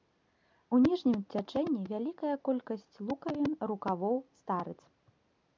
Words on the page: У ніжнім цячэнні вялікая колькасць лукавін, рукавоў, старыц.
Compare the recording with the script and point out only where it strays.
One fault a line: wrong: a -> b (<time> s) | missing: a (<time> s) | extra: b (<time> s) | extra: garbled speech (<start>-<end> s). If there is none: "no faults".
no faults